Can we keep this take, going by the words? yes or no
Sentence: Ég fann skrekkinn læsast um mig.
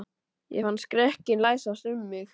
yes